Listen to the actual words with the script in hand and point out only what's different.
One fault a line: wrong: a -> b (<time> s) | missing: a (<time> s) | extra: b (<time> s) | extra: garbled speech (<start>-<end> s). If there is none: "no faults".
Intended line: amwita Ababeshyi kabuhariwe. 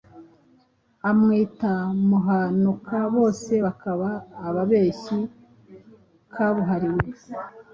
extra: Muhanuka bose bakaba (2.1 s)